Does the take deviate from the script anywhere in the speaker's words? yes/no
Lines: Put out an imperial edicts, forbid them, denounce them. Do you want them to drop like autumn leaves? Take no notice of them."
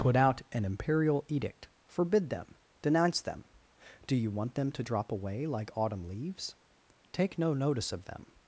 yes